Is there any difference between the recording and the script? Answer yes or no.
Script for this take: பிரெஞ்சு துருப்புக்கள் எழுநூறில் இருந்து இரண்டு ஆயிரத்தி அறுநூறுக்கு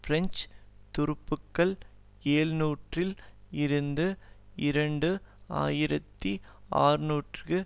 no